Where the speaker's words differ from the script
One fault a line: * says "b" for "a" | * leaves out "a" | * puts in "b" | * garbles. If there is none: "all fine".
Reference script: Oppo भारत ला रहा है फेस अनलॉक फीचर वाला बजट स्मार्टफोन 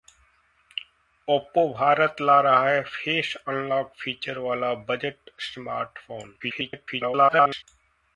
* garbles